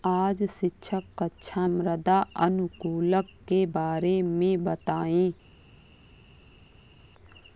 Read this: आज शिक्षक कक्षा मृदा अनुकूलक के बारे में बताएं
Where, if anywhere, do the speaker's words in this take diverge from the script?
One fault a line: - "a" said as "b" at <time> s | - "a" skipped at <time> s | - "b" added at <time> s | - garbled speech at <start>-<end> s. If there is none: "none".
none